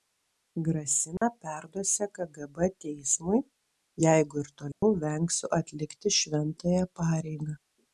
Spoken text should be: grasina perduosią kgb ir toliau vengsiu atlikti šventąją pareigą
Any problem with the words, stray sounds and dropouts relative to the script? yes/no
yes